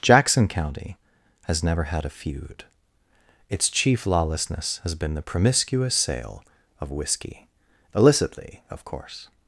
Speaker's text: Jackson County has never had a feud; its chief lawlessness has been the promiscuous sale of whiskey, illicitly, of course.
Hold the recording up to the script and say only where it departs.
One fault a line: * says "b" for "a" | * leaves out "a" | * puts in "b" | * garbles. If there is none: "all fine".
all fine